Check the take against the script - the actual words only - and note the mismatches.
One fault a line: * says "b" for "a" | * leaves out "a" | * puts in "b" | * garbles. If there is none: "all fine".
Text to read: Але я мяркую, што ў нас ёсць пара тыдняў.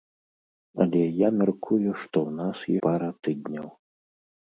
* leaves out "ёсць"